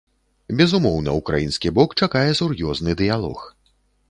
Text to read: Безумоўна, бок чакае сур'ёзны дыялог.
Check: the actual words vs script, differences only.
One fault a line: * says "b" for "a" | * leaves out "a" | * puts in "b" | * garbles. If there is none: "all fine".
* puts in "украінскі"